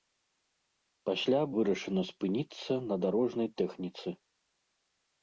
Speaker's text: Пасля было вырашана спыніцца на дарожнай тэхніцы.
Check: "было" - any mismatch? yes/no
yes